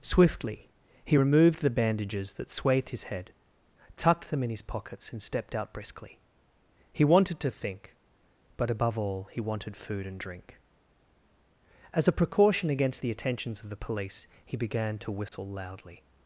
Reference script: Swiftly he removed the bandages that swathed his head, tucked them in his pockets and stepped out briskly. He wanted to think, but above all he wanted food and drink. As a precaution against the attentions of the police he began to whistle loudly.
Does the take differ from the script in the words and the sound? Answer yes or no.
yes